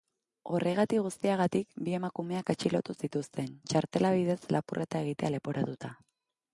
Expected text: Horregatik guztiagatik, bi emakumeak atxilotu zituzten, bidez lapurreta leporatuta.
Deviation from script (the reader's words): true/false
true